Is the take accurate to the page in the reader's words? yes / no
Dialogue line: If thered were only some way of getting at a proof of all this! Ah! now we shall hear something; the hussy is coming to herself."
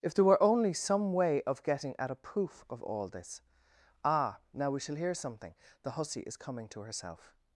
no